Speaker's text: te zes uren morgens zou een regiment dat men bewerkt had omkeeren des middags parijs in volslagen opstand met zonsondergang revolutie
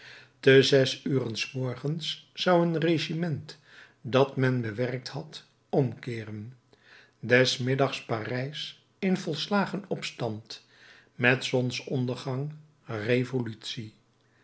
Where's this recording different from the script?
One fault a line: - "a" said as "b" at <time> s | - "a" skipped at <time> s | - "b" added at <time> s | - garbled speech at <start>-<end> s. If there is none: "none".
- "s" added at 1.4 s